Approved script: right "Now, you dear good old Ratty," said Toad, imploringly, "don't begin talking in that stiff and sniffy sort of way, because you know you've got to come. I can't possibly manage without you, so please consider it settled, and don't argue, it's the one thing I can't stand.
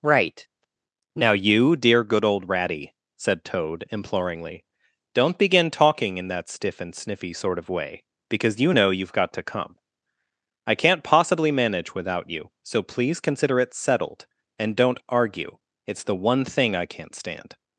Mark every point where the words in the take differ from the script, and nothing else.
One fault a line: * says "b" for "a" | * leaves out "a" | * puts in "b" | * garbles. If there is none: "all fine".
all fine